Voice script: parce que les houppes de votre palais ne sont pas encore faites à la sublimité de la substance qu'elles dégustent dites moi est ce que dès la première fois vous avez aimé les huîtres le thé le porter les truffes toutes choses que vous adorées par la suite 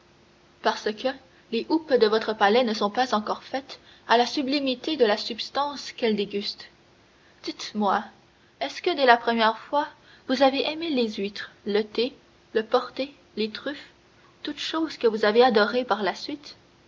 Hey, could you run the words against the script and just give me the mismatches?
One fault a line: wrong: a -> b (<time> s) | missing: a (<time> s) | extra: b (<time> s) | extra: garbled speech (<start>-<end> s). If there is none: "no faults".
extra: avez (15.2 s)